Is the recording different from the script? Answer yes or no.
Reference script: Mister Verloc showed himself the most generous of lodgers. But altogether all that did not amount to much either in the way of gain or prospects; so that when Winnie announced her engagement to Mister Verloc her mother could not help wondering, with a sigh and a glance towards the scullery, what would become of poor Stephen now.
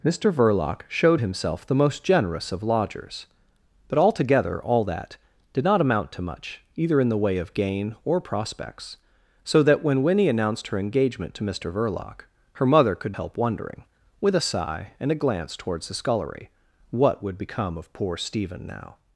yes